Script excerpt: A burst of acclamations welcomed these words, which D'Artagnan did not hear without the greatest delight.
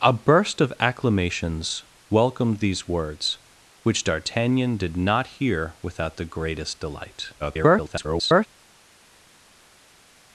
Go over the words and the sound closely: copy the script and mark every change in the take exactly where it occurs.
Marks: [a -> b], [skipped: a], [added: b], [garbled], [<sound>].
A burst of acclamations welcomed these words, which D'Artagnan did not hear without the greatest delight. [garbled]